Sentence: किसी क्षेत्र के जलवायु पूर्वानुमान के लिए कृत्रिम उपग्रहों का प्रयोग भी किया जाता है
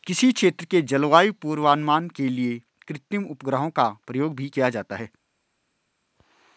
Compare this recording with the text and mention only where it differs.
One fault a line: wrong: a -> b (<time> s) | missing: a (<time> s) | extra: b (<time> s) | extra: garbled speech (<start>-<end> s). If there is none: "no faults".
no faults